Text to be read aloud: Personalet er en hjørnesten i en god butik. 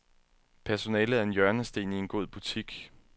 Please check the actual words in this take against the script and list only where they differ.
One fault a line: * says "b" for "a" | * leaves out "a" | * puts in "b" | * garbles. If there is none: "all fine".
all fine